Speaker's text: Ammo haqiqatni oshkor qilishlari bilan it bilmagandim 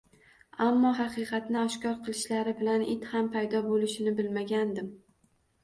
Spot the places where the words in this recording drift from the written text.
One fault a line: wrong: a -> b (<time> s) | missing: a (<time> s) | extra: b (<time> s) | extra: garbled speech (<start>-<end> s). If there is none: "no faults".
extra: ham paydo bo`lishini (3.2 s)